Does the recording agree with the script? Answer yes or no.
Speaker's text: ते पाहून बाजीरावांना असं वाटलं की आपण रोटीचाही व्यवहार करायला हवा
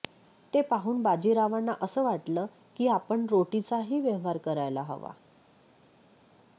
yes